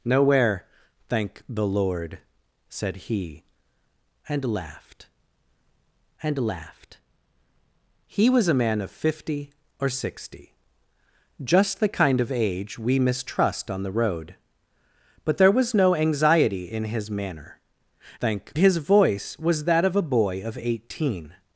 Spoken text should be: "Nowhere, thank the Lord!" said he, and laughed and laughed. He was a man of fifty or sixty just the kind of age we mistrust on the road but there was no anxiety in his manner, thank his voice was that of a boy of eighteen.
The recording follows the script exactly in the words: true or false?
true